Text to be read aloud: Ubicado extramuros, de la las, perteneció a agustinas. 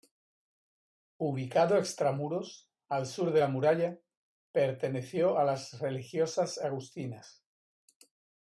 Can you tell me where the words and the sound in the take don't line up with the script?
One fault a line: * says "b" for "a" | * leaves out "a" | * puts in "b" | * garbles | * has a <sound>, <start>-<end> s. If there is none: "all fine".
* puts in "al sur"
* says "muralla" for "las"
* puts in "las religiosas"